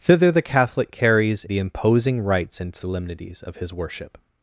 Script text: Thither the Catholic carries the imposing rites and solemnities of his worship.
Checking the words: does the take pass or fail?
pass